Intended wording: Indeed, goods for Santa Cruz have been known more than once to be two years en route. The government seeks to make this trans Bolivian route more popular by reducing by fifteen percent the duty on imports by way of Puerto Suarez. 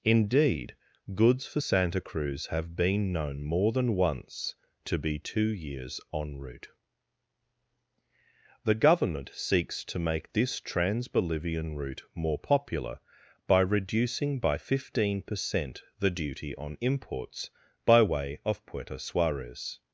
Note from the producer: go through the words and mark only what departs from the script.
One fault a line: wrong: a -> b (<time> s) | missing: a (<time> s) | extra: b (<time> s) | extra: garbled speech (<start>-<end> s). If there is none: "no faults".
no faults